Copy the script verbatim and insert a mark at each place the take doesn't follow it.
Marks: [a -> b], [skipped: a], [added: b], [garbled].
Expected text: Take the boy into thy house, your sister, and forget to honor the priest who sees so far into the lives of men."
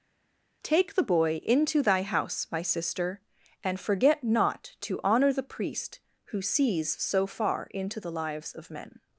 Take the boy into thy house, [your -> my] sister, and forget [added: not] to honor the priest who sees so far into the lives of men."